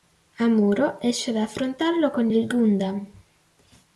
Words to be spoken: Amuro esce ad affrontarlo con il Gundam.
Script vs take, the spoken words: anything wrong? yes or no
no